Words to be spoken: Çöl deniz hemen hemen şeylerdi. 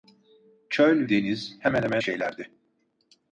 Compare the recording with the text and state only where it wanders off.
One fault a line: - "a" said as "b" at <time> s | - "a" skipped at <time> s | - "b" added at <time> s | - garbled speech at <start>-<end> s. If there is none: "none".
none